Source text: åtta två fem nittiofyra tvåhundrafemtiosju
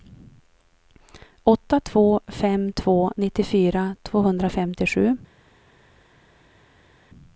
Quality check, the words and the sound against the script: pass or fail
fail